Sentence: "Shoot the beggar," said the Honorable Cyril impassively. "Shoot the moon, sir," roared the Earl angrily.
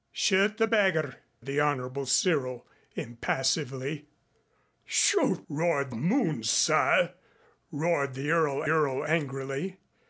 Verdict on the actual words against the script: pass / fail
fail